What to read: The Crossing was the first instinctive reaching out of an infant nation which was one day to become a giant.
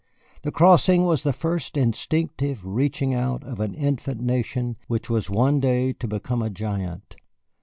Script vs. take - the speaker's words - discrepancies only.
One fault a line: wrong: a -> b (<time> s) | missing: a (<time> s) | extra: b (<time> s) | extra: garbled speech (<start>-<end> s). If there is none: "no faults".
no faults